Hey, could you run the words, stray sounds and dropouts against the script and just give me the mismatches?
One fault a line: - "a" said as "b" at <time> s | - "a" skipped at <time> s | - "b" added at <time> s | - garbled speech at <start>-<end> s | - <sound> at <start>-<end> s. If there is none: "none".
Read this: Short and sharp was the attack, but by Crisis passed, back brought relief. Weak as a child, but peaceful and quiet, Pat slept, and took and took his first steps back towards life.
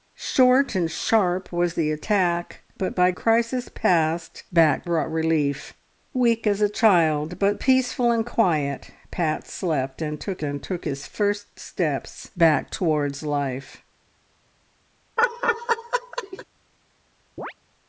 - laugh at 15.2-16.4 s
- chirp at 17.4-17.5 s